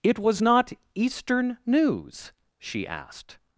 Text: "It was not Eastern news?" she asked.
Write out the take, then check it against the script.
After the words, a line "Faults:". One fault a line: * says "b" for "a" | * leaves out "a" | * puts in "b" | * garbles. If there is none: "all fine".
"It was not Eastern news?" she asked.
Faults:
all fine